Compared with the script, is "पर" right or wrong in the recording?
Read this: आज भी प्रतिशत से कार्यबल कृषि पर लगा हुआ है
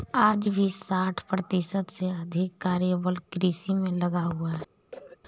wrong